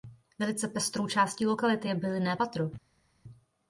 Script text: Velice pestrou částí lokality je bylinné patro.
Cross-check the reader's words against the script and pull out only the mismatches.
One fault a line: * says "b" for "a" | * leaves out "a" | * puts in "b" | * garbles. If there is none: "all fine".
all fine